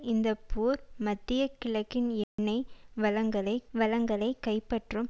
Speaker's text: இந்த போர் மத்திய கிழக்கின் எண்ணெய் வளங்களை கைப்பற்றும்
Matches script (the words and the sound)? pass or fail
fail